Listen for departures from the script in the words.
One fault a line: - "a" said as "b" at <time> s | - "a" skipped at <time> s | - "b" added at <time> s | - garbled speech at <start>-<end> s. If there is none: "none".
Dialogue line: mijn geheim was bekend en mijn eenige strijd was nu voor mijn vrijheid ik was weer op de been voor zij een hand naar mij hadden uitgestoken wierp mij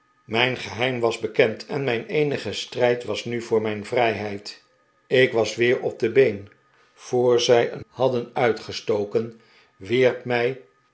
- "hand naar mij" skipped at 7.8 s